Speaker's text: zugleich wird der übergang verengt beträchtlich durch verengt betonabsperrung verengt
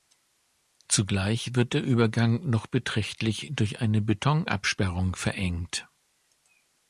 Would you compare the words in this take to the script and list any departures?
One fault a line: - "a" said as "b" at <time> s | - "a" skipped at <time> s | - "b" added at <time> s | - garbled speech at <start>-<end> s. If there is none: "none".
- "verengt" said as "noch" at 2.5 s
- "verengt" said as "eine" at 3.8 s